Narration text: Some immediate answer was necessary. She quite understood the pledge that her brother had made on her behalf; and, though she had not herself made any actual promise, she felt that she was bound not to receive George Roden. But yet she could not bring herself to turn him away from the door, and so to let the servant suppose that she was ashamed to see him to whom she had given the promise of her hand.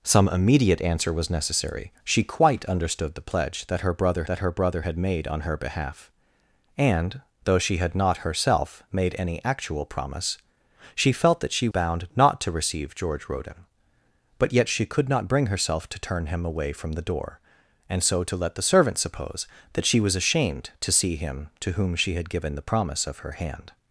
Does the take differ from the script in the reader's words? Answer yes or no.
yes